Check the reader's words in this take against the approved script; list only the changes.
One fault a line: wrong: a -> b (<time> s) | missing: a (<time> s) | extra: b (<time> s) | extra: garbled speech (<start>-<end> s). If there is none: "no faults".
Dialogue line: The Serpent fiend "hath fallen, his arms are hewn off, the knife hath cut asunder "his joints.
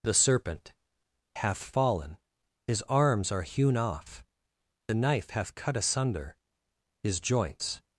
missing: fiend (0.7 s)